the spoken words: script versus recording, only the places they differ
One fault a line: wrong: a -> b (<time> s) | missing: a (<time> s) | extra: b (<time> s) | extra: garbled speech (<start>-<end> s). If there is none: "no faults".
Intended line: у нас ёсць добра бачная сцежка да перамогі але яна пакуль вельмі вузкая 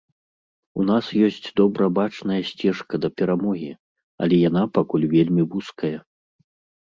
no faults